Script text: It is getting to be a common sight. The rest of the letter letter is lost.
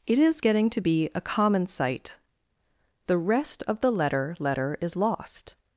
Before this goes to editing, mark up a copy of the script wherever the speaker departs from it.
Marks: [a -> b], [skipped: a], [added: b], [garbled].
It is getting to be a common sight. The rest of the letter letter is lost.